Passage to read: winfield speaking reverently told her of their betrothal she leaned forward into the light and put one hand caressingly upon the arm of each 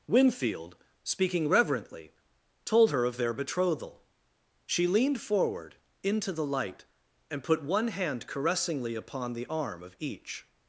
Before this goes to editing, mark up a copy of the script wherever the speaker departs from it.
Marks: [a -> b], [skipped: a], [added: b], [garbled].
winfield speaking reverently told her of their betrothal she leaned forward into the light and put one hand caressingly upon the arm of each